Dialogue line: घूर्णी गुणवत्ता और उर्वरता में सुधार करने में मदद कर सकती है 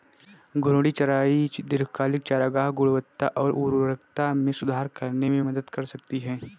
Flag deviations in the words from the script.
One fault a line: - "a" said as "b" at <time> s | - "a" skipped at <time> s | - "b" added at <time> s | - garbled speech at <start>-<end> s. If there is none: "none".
- "चराई दीर्घकालिक चारागाह" added at 0.9 s